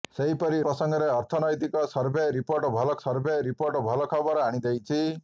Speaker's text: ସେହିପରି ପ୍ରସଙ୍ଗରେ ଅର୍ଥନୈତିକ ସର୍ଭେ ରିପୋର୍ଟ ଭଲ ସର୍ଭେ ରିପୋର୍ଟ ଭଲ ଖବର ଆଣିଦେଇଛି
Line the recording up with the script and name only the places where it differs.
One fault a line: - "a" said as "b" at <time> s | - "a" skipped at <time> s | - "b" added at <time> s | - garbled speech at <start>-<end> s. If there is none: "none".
none